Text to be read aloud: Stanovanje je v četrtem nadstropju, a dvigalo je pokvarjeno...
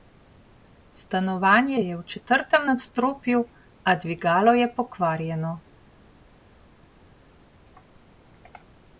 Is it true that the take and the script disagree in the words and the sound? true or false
false